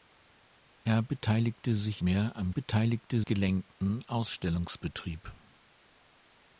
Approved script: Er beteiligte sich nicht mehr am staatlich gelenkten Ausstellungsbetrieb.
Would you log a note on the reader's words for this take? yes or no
yes